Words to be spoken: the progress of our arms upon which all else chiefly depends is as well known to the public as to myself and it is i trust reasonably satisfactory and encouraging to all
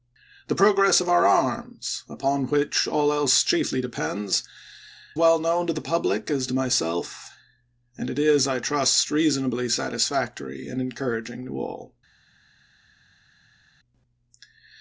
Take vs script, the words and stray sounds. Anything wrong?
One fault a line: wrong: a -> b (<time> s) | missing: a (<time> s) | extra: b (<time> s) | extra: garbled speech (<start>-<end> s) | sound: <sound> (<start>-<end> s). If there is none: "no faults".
missing: is as (4.4 s)